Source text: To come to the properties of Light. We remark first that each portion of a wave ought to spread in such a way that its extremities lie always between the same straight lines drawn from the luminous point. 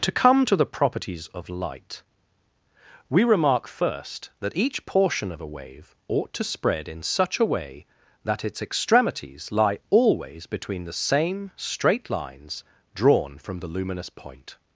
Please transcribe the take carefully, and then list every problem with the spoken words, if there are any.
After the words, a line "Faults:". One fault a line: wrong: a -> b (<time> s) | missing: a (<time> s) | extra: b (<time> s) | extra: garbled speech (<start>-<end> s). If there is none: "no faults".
To come to the properties of Light. We remark first that each portion of a wave ought to spread in such a way that its extremities lie always between the same straight lines drawn from the luminous point.
Faults:
no faults